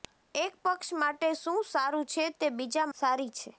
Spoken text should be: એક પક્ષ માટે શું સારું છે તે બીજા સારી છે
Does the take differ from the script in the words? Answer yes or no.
no